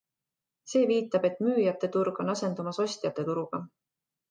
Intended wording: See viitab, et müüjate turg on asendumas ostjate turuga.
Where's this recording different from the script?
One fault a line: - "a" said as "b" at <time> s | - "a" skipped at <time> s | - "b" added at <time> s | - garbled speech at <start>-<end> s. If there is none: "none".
none